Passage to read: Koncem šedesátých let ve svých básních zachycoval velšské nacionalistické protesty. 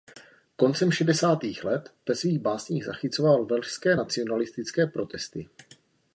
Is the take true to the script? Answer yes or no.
yes